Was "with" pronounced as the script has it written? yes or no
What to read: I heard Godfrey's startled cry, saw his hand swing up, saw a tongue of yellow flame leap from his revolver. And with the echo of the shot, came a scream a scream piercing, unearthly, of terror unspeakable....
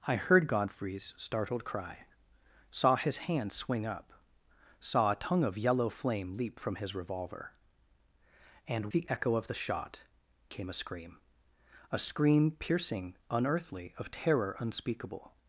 no